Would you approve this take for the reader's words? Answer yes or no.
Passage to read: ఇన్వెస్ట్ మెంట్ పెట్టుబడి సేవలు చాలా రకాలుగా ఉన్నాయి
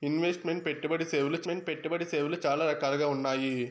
no